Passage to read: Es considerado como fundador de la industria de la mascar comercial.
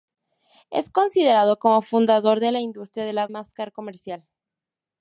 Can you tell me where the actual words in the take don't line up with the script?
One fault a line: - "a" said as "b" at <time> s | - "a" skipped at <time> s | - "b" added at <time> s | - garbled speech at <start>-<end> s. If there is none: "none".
none